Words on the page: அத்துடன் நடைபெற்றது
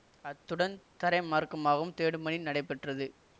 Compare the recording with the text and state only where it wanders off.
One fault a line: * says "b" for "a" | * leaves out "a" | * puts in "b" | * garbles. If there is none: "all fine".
* puts in "தரைமார்க்கமாகவும் தேடும் பணி"